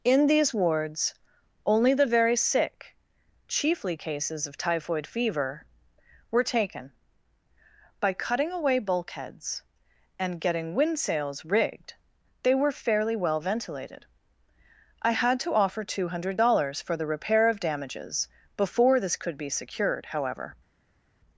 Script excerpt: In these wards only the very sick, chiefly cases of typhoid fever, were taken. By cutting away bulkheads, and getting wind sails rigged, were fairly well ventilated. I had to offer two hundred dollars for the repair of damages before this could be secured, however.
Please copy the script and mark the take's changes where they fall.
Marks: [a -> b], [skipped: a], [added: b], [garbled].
In these wards only the very sick, chiefly cases of typhoid fever, were taken. By cutting away bulkheads, and getting wind sails rigged, [added: they] were fairly well ventilated. I had to offer two hundred dollars for the repair of damages before this could be secured, however.